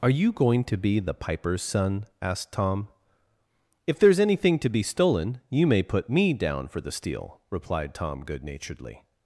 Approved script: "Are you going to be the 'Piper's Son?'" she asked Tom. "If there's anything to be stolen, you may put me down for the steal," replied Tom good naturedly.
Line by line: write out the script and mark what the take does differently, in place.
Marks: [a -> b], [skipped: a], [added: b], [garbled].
"Are you going to be the 'Piper's Son?'" [skipped: she] asked Tom. "If there's anything to be stolen, you may put me down for the steal," replied Tom good naturedly.